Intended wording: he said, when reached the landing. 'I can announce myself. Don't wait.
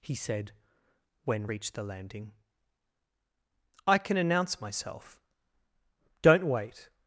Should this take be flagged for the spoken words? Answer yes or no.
no